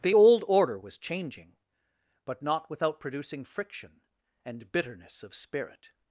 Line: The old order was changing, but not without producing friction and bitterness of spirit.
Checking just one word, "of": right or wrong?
right